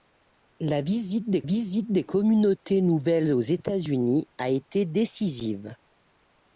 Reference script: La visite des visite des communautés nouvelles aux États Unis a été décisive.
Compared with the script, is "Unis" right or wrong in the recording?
right